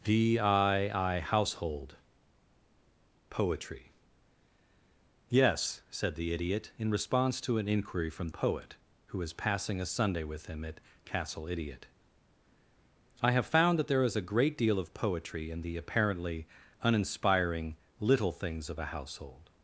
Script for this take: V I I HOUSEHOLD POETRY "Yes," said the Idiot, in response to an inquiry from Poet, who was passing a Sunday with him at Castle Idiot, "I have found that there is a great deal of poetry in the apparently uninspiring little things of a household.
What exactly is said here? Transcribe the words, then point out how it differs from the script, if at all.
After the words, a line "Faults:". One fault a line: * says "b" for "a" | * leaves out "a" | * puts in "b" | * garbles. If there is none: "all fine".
V I I HOUSEHOLD POETRY "Yes," said the Idiot, in response to an inquiry from Poet, who was passing a Sunday with him at Castle Idiot, "I have found that there is a great deal of poetry in the apparently uninspiring little things of a household.
Faults:
all fine